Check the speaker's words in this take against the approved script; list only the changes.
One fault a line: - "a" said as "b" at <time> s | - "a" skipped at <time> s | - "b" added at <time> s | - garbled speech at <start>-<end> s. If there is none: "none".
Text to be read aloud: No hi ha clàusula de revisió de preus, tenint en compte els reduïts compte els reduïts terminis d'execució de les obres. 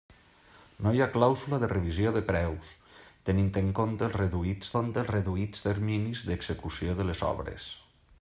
none